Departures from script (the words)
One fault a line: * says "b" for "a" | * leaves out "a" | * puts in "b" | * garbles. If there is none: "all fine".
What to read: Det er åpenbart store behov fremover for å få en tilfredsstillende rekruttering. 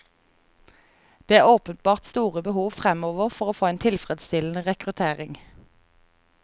all fine